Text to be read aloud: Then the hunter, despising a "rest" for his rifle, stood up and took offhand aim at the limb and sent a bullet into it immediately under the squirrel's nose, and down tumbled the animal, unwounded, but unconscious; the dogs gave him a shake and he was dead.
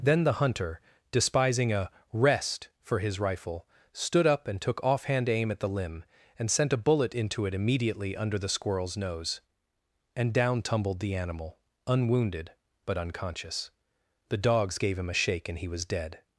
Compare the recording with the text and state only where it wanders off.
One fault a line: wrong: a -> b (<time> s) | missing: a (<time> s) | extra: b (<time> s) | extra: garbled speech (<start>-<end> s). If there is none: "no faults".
no faults